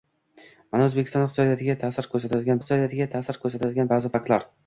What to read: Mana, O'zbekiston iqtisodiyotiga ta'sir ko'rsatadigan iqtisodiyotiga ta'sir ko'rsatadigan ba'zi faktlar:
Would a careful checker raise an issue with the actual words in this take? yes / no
no